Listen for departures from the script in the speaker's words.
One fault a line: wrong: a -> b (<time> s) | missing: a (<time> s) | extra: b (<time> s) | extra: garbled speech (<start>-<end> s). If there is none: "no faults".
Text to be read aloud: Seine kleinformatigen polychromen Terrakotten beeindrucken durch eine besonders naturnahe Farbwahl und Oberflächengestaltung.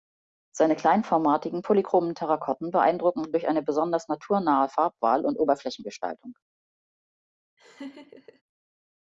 no faults